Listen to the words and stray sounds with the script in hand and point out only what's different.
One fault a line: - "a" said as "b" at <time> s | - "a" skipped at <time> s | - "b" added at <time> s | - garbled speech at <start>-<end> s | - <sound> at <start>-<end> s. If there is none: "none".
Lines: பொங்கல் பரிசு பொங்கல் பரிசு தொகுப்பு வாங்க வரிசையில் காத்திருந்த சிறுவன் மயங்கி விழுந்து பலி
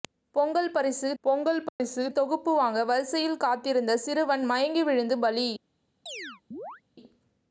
- dropout at 1.7-1.8 s
- chirp at 6.1-6.8 s